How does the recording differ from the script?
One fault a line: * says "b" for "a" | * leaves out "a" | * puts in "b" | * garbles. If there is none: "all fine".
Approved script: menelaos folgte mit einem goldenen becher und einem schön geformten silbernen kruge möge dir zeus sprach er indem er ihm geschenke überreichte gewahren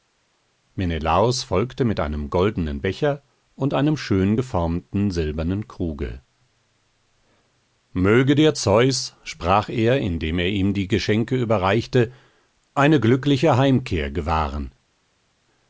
* puts in "die"
* puts in "eine glückliche heimkehr"